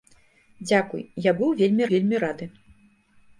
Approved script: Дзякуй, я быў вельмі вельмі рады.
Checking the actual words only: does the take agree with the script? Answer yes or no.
yes